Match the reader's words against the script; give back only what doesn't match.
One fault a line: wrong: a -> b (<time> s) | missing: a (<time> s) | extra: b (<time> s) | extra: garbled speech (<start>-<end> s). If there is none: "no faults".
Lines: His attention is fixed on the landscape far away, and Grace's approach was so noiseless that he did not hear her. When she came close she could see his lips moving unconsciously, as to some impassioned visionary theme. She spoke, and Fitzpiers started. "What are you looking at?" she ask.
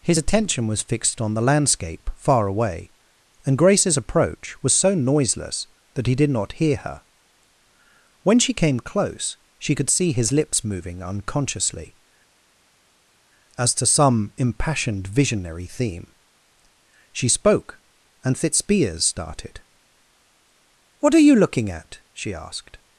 wrong: is -> was (0.7 s)
wrong: ask -> asked (22.3 s)